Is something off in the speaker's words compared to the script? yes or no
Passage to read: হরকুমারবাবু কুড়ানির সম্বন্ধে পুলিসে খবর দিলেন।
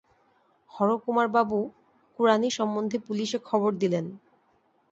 no